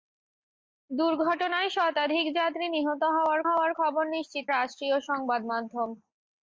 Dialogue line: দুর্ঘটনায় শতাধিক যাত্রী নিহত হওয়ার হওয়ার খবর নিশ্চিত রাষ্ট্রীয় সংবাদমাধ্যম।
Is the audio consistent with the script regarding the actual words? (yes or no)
yes